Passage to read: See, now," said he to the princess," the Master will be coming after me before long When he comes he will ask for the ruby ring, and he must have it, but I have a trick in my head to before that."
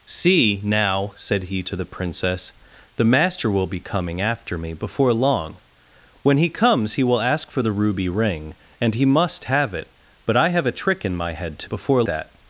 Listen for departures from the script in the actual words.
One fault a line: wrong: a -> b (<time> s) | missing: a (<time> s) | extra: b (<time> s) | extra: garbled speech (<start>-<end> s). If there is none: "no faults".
no faults